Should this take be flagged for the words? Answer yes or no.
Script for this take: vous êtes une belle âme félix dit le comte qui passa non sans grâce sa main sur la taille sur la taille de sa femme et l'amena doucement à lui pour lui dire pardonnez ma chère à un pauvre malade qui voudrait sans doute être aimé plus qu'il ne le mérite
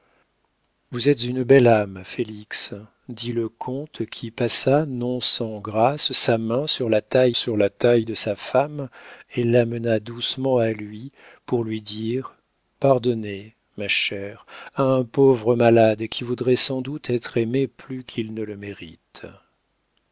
no